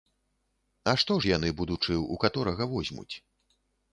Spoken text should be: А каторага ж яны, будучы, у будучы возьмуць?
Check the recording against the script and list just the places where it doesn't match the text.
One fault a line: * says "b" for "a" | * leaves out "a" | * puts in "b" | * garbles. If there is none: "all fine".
* says "што" for "каторага"
* says "каторага" for "будучы"